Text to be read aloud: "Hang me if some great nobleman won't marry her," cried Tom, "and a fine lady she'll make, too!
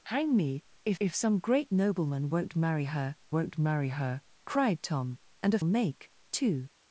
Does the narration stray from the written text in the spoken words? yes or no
yes